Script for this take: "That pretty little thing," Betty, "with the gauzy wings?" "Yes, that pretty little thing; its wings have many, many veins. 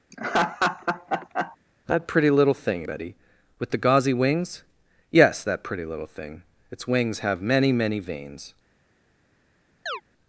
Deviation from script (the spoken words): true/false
false